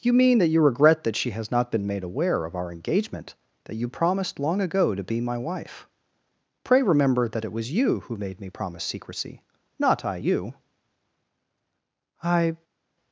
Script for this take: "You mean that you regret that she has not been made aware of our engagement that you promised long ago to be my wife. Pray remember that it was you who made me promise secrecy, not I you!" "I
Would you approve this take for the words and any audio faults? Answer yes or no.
yes